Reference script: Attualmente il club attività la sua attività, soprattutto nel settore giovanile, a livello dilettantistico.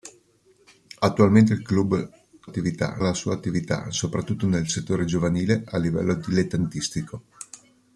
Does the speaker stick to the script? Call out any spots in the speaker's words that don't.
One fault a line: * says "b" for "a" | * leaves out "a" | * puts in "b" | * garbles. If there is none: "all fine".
all fine